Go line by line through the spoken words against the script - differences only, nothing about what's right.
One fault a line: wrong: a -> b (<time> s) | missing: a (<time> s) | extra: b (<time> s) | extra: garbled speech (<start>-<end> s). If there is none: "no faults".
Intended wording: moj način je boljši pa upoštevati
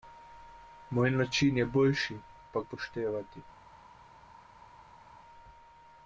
no faults